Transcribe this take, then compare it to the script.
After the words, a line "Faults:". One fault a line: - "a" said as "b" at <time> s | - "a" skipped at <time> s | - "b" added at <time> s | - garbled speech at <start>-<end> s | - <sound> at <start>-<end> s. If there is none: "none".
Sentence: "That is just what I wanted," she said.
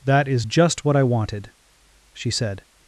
"That is just what I wanted," she said.
Faults:
none